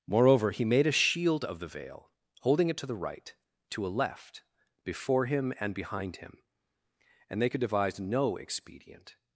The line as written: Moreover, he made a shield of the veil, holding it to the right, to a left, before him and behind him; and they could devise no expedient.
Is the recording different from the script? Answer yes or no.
no